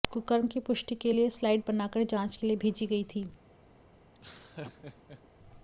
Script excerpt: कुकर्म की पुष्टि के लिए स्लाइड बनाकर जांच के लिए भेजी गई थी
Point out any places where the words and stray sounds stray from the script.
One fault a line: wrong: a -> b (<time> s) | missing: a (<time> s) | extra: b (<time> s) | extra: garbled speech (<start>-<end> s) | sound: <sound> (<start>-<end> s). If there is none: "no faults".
sound: laugh (4.1-5.2 s)